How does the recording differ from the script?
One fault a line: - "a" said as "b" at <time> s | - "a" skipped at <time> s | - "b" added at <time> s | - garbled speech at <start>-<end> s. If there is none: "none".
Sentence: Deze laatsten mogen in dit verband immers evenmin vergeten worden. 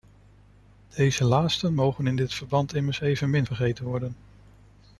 none